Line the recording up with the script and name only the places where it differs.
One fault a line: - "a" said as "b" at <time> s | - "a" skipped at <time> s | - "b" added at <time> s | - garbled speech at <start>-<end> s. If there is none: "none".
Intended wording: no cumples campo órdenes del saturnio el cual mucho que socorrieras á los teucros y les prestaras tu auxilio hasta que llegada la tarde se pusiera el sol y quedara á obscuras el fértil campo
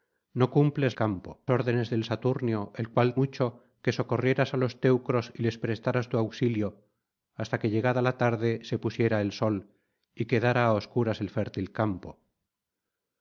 none